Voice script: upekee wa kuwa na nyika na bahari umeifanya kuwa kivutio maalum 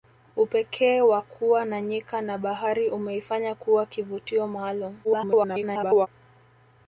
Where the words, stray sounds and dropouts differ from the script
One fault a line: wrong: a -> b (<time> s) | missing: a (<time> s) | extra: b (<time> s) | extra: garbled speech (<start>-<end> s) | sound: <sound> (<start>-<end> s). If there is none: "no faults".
extra: garbled speech (5.0-6.1 s)